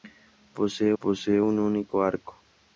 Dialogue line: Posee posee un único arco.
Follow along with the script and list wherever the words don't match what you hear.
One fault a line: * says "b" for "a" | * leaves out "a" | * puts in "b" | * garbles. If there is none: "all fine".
all fine